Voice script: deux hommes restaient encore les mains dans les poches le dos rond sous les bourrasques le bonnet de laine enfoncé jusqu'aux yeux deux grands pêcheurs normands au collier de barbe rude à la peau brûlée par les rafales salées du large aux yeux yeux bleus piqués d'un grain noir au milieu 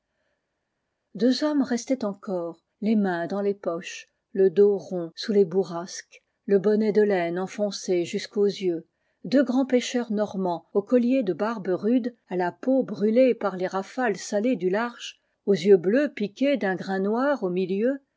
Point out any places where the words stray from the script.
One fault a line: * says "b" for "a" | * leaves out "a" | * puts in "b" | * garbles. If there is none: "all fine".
* leaves out "yeux"